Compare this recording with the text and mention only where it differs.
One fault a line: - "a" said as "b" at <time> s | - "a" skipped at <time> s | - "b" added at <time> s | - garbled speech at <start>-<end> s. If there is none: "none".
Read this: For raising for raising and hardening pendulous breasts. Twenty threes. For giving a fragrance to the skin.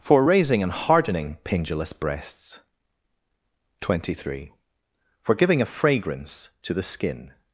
- "for raising" skipped at 0.6 s
- "threes" said as "three" at 4.1 s